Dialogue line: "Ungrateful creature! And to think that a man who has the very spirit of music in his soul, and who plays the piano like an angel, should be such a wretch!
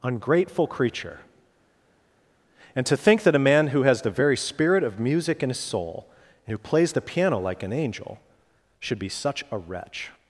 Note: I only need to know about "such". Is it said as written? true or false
true